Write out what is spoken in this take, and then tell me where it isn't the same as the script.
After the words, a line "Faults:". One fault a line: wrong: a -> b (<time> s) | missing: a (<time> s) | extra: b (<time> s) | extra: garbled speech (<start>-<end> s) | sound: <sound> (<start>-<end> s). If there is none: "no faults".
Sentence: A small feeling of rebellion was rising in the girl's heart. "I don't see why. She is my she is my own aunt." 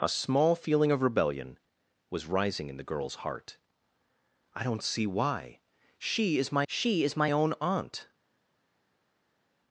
A small feeling of rebellion was rising in the girl's heart. "I don't see why. She is my she is my own aunt."
Faults:
no faults